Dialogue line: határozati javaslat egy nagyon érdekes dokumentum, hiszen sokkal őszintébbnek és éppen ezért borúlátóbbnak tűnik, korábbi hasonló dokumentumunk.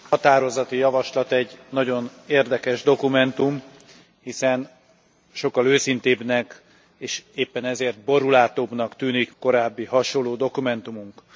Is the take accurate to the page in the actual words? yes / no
yes